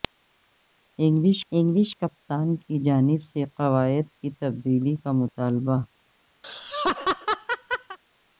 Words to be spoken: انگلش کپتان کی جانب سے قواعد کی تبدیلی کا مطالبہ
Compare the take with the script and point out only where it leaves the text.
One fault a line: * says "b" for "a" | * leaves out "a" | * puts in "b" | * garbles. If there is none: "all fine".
* puts in "انگلش"